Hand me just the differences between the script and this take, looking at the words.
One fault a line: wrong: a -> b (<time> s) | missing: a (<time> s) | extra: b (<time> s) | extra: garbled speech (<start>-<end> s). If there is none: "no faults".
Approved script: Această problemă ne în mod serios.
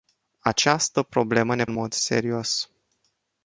no faults